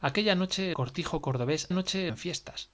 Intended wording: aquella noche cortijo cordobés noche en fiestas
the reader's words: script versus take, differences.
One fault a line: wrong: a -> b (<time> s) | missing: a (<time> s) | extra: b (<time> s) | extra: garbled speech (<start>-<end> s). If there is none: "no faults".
no faults